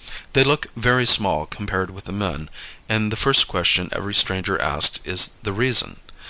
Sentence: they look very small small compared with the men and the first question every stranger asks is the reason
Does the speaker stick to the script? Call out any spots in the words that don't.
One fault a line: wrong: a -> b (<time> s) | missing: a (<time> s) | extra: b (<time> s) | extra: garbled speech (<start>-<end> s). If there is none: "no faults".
missing: small (1.4 s)